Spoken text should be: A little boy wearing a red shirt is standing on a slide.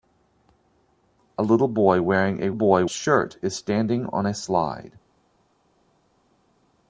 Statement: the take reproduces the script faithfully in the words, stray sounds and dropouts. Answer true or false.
false